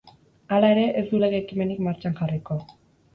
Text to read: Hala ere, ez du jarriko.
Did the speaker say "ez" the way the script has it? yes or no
yes